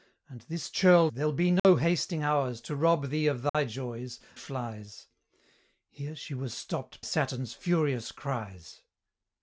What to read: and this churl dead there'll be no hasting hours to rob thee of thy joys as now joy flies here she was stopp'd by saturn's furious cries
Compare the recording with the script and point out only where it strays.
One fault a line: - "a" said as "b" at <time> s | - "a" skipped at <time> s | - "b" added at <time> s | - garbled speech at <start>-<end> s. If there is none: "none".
- "dead" skipped at 1.1 s
- "as now joy" skipped at 4.2 s
- "by" skipped at 7.0 s